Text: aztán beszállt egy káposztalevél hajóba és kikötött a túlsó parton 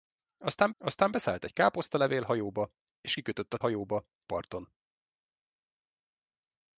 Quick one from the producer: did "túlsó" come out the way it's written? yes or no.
no